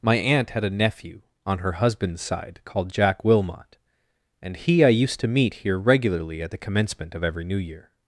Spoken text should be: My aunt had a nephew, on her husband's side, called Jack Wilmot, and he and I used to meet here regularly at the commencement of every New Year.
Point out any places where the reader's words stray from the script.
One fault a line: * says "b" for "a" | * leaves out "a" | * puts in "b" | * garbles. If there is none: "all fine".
* leaves out "and"